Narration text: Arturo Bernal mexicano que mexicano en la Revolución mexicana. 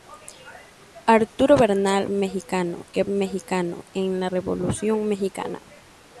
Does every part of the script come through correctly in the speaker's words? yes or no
yes